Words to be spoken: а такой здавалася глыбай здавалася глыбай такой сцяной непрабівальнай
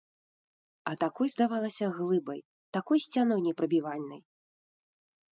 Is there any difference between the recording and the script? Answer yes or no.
yes